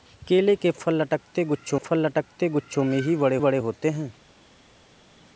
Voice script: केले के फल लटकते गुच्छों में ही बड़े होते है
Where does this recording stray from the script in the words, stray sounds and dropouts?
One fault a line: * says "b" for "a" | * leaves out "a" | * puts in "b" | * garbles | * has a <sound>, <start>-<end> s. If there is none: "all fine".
* puts in "फल लटकते गुच्छों"
* puts in "बड़े"